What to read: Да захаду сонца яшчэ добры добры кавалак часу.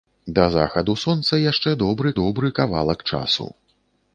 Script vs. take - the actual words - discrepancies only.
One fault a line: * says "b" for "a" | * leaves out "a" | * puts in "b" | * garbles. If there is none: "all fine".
all fine